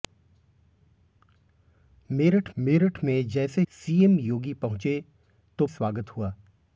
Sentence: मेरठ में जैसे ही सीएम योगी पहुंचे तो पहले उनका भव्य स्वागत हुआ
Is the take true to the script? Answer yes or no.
no